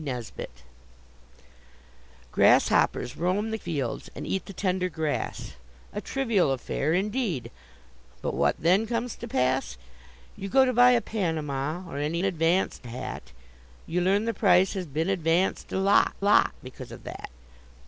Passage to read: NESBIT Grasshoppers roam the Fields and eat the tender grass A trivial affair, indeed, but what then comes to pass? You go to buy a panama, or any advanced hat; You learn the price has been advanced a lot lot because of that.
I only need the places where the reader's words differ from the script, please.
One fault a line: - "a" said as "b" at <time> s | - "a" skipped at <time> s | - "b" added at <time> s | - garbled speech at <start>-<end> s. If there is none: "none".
none